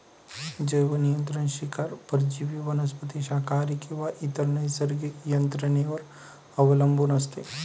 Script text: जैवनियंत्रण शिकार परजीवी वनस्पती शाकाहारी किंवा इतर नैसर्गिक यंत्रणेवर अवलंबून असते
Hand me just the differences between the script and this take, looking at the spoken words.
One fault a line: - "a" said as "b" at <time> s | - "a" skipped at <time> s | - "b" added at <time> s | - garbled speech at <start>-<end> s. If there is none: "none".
none